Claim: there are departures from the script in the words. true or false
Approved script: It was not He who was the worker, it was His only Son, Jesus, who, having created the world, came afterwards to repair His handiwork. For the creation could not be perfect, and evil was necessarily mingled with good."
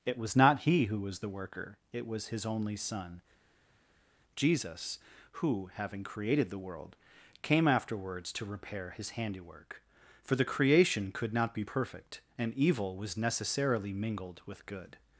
false